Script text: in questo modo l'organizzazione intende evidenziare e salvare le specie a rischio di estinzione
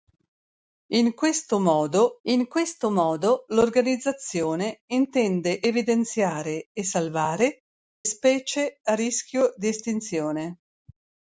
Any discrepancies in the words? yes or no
yes